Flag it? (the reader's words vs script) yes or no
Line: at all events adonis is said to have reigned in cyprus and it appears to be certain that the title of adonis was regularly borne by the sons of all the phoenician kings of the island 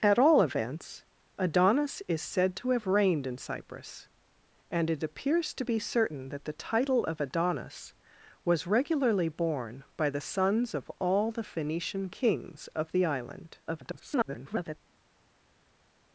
yes